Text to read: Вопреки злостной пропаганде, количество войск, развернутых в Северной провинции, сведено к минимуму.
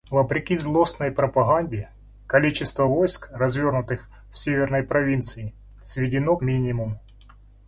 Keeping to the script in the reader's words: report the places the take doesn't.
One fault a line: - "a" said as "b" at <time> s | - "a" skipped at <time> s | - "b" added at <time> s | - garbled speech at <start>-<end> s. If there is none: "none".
- "к" skipped at 6.4 s